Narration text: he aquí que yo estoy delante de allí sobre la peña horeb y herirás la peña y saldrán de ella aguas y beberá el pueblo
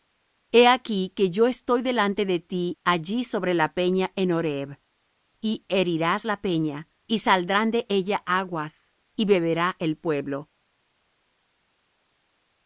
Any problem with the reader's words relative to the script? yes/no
yes